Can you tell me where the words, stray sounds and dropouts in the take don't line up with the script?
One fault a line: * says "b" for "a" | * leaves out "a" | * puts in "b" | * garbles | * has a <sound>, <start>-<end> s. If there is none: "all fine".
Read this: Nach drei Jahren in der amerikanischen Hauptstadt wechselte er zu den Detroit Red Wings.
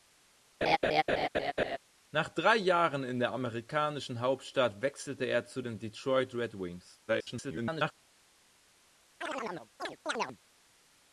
* has a laugh, 0.6-1.8 s
* garbles
* has a chirp, 9.2-10.4 s